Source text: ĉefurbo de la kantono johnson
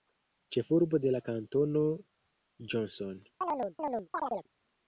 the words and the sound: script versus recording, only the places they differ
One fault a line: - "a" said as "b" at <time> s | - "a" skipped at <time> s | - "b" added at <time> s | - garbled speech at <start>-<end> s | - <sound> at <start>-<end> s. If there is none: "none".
- chirp at 3.4-4.5 s